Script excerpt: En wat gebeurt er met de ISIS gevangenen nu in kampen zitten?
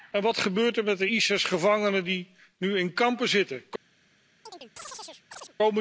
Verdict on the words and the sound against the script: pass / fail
fail